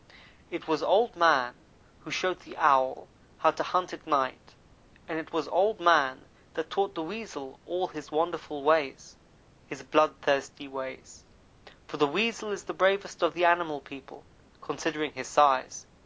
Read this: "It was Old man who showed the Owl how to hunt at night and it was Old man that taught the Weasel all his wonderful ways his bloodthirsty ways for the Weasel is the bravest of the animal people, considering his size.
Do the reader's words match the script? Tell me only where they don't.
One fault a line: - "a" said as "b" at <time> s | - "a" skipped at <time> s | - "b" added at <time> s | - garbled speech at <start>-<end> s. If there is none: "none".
none